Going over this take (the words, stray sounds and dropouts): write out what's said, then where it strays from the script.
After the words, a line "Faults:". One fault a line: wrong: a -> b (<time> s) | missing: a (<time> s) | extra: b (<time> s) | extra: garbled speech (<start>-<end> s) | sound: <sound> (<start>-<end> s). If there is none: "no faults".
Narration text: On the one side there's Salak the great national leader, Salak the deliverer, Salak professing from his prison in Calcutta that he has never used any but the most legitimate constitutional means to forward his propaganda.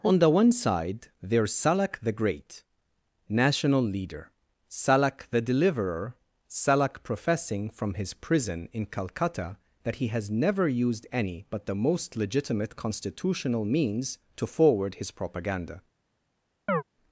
On the one side there's Salak the great national leader, Salak the deliverer, Salak professing from his prison in Calcutta that he has never used any but the most legitimate constitutional means to forward his propaganda.
Faults:
sound: chirp (16.7-16.8 s)